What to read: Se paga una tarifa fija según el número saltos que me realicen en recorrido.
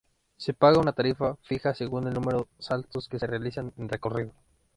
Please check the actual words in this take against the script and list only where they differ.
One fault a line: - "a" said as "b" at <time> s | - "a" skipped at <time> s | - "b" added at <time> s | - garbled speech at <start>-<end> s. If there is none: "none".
- "me" said as "se" at 3.2 s